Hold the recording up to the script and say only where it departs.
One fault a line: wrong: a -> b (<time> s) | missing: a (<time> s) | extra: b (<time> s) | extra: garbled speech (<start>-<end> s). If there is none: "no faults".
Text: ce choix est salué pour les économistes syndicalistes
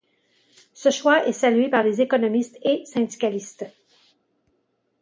wrong: pour -> par (1.7 s)
extra: et (2.6 s)